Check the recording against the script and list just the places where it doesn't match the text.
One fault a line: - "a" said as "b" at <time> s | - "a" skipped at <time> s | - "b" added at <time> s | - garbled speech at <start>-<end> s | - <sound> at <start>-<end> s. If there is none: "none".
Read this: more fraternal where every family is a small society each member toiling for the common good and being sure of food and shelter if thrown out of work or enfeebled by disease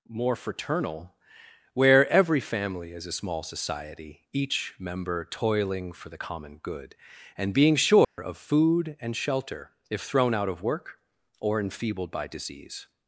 - dropout at 8.0-8.2 s